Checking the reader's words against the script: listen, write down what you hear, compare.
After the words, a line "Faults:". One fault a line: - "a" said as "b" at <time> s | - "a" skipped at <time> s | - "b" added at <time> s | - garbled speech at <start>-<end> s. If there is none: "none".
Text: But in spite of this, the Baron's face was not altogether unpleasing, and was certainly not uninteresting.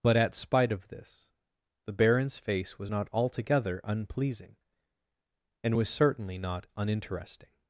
But at spite of this, the Baron's face was not altogether unpleasing, and was certainly not uninteresting.
Faults:
- "in" said as "at" at 0.2 s